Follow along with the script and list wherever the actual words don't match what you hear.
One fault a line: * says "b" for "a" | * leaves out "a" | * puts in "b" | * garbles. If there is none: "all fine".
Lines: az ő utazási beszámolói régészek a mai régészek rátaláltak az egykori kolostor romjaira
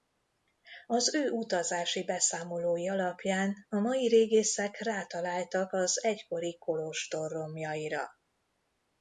* says "alapján" for "régészek"